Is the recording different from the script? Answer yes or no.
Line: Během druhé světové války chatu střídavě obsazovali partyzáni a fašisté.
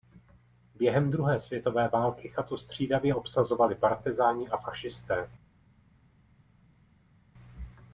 no